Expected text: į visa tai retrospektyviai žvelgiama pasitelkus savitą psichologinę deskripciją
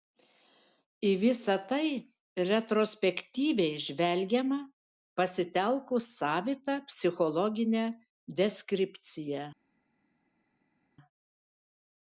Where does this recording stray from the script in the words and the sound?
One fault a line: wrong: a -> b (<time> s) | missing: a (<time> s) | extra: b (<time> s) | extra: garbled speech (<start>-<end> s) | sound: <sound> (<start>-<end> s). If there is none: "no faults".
no faults